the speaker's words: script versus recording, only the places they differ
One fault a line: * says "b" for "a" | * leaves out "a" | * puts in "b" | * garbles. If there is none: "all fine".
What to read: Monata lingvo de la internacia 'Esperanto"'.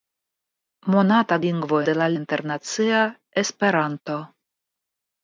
all fine